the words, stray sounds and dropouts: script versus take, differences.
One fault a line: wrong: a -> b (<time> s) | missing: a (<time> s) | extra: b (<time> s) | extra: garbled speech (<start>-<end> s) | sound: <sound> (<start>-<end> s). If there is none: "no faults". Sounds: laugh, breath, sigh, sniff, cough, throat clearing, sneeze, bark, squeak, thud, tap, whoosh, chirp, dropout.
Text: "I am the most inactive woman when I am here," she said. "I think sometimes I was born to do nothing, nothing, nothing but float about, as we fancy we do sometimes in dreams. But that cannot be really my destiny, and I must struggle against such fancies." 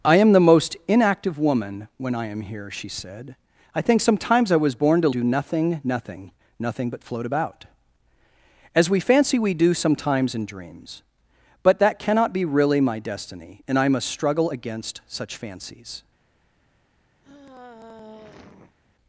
sound: sigh (17.2-18.8 s)